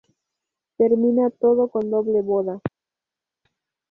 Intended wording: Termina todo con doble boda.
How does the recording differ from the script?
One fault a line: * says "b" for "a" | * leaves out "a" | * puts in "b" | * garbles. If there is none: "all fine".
all fine